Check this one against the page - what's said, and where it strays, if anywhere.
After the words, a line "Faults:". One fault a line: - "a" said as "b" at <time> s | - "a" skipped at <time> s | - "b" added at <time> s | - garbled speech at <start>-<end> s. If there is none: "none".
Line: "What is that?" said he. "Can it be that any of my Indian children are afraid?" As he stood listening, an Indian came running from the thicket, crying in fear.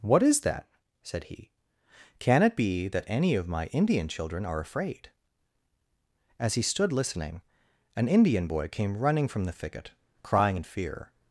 "What is that?" said he. "Can it be that any of my Indian children are afraid?" As he stood listening, an Indian boy came running from the thicket, crying in fear.
Faults:
- "boy" added at 8.5 s